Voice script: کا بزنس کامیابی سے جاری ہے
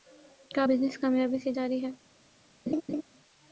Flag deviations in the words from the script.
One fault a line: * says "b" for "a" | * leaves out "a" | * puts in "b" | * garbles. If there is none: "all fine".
all fine